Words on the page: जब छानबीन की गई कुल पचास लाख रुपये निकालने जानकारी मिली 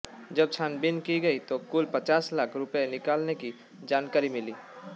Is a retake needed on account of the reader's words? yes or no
yes